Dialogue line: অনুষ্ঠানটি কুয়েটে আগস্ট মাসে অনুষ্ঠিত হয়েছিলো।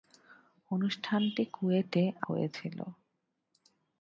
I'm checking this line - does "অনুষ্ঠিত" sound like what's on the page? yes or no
no